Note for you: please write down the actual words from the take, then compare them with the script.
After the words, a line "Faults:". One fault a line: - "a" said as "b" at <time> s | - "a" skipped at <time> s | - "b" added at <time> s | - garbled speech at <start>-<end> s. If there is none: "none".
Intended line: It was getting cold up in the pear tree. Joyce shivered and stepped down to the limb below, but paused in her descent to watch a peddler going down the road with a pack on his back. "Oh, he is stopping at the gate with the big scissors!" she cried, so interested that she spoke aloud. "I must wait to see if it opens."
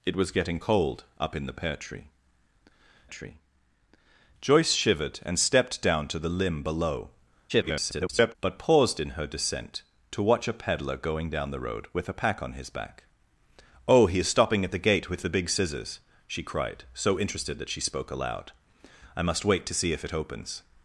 It was getting cold up in the pear tree tree. Joyce shivered and stepped down to the limb below, [garbled] but paused in her descent to watch a peddler going down the road with a pack on his back. "Oh, he is stopping at the gate with the big scissors!" she cried, so interested that she spoke aloud. "I must wait to see if it opens."
Faults:
- "tree" added at 3.1 s
- garbled speech at 7.5-8.4 s